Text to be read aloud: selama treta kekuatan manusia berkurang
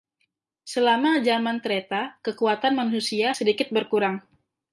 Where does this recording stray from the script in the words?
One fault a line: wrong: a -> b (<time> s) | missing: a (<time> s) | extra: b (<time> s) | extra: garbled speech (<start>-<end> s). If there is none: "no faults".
extra: zaman (1.2 s)
extra: sedikit (3.3 s)